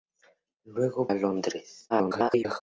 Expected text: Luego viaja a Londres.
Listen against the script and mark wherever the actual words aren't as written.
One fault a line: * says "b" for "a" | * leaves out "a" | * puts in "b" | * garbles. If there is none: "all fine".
* leaves out "viaja"
* garbles